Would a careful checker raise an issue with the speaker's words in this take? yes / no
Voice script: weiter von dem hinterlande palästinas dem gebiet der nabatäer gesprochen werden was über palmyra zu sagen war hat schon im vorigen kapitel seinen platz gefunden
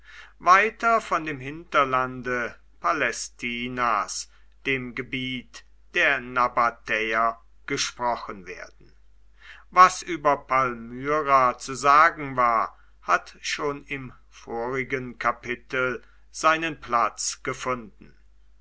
no